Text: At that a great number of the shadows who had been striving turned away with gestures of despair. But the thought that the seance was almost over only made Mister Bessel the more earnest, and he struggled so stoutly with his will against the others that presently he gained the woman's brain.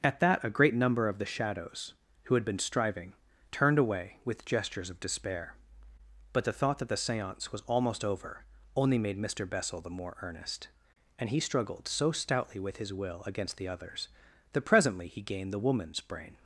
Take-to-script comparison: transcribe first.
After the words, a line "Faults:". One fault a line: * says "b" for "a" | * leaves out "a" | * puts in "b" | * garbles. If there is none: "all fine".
At that a great number of the shadows who had been striving turned away with gestures of despair. But the thought that the seance was almost over only made Mister Bessel the more earnest, and he struggled so stoutly with his will against the others that presently he gained the woman's brain.
Faults:
all fine